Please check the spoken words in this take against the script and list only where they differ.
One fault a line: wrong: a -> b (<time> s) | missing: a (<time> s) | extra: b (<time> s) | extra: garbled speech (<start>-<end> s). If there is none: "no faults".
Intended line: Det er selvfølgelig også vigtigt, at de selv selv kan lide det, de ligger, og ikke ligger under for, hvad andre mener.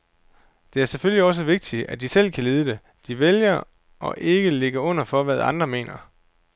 missing: selv (2.3 s)
wrong: ligger -> vælger (3.2 s)